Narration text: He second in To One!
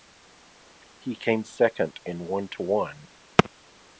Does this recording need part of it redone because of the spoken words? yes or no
yes